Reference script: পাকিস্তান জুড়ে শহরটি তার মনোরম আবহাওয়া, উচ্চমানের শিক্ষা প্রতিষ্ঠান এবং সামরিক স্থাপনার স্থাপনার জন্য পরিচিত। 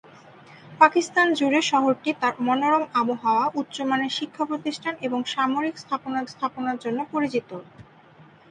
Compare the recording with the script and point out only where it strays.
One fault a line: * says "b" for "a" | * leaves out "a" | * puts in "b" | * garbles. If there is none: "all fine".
all fine